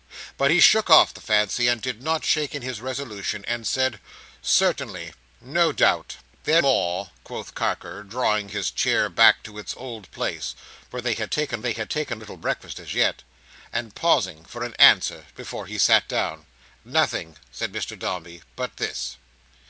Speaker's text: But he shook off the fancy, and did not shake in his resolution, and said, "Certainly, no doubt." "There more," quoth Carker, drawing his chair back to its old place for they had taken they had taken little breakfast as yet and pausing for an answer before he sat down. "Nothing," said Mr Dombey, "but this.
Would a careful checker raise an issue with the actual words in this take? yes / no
no